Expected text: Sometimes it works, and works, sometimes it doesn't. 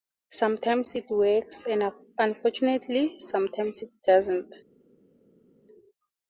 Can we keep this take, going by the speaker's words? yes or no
no